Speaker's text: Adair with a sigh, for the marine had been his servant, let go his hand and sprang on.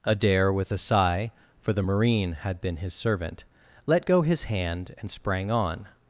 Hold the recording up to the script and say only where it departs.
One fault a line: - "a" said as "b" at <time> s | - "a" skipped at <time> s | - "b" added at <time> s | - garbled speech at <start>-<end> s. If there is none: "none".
none